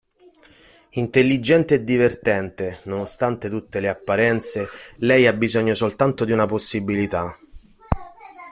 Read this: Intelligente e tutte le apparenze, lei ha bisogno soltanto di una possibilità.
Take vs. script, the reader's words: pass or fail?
fail